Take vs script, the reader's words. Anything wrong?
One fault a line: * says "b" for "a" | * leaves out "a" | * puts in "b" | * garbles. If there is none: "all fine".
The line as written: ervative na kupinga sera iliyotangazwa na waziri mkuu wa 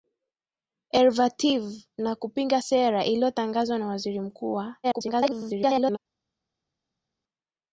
* garbles